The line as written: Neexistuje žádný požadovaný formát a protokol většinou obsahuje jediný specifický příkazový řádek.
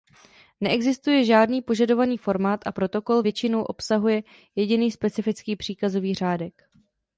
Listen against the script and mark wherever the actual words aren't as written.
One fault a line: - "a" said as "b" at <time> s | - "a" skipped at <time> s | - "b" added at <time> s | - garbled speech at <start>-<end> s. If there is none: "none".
none